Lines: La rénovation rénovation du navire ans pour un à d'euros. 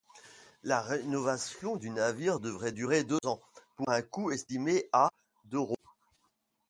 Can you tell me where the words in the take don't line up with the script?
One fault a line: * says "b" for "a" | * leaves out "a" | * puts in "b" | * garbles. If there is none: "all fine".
* leaves out "rénovation"
* puts in "devrait durer deux"
* puts in "coût estimé"